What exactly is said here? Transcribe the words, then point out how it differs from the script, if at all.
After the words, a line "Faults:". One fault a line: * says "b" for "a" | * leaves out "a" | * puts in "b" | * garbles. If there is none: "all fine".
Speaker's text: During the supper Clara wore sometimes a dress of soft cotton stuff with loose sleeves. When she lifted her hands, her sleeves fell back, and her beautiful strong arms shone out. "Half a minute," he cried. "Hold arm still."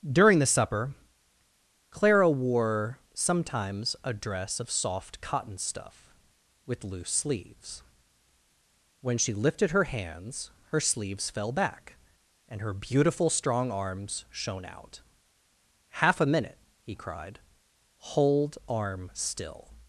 During the supper Clara wore sometimes a dress of soft cotton stuff with loose sleeves. When she lifted her hands, her sleeves fell back, and her beautiful strong arms shone out. "Half a minute," he cried. "Hold arm still."
Faults:
all fine